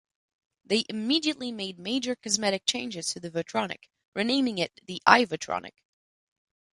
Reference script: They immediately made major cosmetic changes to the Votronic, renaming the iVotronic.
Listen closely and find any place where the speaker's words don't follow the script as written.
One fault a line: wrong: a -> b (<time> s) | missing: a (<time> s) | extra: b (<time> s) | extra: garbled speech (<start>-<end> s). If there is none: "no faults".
extra: it (4.6 s)